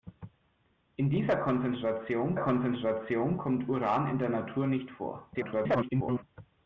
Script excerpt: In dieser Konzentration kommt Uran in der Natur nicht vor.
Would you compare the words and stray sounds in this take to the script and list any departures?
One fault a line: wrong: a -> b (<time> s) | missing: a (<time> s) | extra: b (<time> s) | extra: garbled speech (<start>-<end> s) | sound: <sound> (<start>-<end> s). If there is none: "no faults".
extra: Konzentration (2.4 s)
extra: garbled speech (5.3-6.2 s)